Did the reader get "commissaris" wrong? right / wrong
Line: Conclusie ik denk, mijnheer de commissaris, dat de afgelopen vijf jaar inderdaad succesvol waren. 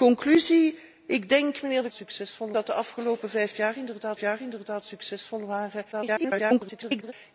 wrong